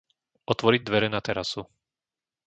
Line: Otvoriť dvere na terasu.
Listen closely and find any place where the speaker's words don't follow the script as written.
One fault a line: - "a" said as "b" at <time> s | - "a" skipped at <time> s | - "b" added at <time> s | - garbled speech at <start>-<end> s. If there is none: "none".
none